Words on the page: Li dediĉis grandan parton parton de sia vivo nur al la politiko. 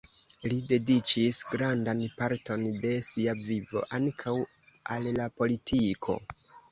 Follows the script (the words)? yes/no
no